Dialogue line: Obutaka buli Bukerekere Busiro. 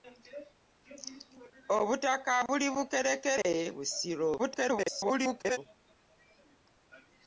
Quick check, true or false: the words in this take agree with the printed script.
false